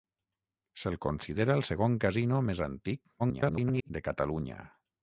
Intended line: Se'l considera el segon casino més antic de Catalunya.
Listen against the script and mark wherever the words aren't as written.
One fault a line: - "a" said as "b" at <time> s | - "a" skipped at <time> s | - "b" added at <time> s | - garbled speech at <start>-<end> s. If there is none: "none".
- garbled speech at 3.2-3.9 s